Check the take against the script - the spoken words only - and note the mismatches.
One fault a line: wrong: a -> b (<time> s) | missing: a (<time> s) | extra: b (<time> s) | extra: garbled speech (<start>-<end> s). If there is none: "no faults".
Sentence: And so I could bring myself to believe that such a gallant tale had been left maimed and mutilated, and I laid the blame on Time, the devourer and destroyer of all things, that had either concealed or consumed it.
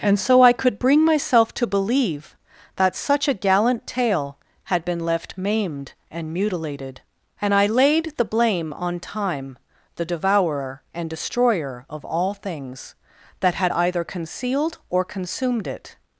no faults